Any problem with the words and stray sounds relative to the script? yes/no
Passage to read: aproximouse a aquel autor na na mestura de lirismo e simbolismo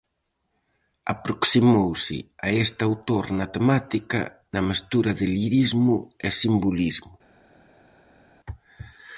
yes